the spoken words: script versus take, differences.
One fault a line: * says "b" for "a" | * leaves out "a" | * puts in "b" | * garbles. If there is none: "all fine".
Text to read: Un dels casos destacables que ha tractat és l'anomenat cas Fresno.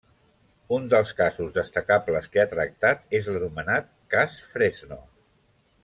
all fine